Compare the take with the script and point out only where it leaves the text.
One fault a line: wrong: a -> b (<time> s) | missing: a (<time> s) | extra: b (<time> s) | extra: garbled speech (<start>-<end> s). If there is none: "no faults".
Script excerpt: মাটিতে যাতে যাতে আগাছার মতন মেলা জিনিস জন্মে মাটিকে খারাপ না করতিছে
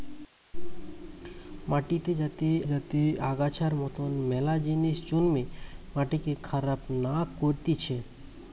no faults